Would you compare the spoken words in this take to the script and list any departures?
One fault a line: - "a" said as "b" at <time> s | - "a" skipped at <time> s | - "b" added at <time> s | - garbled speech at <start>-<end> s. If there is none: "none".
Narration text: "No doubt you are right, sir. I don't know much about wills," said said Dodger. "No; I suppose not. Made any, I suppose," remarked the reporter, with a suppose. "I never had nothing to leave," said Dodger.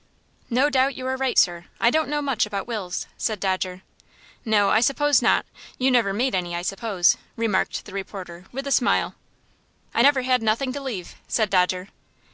- "said" skipped at 3.4 s
- "You never" added at 5.8 s
- "suppose" said as "smile" at 8.7 s